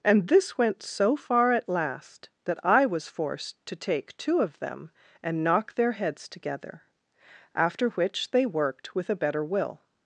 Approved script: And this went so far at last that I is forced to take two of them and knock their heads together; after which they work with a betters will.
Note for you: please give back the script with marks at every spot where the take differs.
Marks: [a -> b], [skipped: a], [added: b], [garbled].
And this went so far at last that I [is -> was] forced to take two of them and knock their heads together; after which they [work -> worked] with a [betters -> better] will.